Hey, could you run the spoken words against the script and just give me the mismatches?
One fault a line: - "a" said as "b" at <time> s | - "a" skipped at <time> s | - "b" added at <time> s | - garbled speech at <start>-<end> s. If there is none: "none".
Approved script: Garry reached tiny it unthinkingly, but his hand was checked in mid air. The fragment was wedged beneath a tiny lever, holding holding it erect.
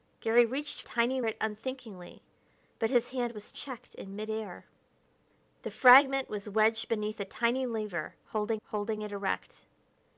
none